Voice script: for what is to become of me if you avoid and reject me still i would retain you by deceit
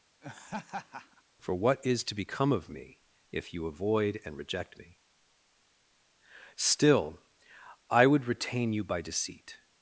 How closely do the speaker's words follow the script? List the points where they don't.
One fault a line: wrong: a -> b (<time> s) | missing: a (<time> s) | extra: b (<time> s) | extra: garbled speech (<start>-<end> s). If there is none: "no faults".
no faults